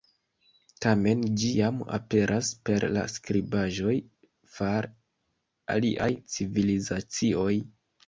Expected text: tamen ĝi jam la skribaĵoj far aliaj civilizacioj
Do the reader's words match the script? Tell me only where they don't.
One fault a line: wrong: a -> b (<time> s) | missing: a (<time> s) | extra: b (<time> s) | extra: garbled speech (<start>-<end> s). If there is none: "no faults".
extra: aperas per (2.0 s)